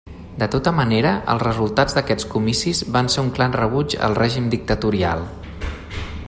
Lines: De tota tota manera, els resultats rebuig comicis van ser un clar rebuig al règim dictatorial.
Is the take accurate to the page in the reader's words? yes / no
no